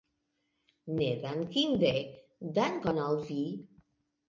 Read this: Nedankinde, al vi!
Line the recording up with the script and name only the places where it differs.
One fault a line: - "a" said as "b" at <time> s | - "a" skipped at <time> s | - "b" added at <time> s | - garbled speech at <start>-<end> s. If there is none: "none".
- "dankon" added at 2.6 s